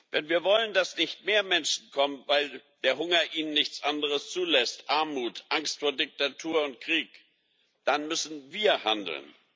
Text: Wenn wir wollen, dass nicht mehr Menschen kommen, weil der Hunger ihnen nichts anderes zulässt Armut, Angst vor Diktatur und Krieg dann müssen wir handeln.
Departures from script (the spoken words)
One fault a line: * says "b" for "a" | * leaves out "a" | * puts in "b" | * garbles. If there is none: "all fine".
all fine